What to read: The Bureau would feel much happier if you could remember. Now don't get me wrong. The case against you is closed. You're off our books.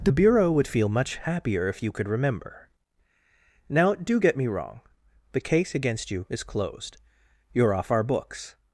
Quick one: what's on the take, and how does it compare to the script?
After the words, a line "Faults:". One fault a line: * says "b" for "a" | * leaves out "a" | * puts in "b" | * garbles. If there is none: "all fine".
The Bureau would feel much happier if you could remember. Now do get me wrong. The case against you is closed. You're off our books.
Faults:
* says "do" for "don't"